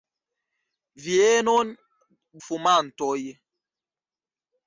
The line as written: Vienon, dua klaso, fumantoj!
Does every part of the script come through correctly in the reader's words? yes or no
no